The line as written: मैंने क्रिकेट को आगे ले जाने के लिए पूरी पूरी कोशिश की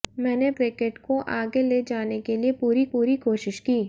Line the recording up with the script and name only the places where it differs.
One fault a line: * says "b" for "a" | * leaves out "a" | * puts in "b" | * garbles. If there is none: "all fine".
all fine